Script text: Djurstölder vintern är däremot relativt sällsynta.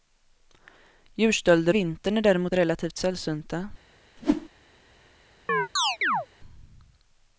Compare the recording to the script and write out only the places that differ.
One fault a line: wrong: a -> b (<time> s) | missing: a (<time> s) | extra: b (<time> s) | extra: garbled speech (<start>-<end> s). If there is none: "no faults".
no faults